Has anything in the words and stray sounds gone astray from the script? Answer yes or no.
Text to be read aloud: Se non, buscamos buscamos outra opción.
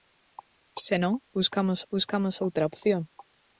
no